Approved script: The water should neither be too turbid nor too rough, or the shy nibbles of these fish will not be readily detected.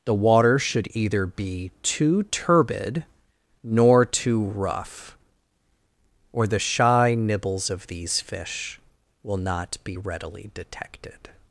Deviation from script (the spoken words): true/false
true